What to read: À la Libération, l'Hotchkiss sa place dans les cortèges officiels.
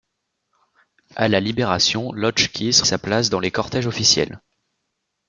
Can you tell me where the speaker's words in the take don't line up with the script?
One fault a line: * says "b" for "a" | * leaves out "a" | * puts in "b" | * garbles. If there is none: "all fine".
all fine